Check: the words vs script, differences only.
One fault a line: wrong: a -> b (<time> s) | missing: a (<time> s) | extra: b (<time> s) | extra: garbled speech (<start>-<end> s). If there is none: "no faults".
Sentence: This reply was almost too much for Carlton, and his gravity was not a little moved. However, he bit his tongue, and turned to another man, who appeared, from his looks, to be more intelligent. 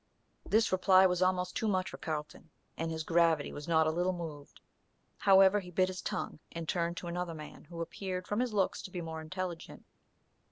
no faults